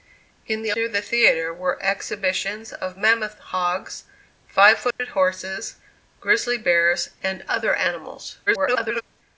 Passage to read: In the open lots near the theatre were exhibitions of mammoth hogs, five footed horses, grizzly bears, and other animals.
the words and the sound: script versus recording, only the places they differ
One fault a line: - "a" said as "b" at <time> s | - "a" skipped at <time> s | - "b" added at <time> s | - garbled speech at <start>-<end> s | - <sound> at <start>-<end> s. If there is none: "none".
- "open lots" skipped at 0.7 s
- dropout at 4.9-5.0 s
- garbled speech at 8.5-9.0 s